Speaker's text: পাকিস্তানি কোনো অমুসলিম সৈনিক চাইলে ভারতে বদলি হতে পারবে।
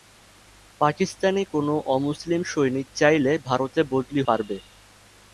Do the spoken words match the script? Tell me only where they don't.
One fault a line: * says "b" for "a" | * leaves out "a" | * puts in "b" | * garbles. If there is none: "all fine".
* leaves out "হতে"